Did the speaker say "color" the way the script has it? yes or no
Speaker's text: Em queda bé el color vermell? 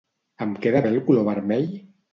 yes